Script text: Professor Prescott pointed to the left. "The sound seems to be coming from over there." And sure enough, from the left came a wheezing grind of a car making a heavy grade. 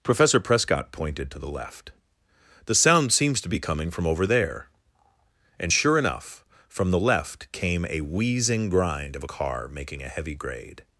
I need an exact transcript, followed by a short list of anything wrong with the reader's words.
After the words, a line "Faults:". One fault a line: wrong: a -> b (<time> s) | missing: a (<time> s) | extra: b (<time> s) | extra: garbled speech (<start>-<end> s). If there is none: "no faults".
Professor Prescott pointed to the left. "The sound seems to be coming from over there." And sure enough, from the left came a wheezing grind of a car making a heavy grade.
Faults:
no faults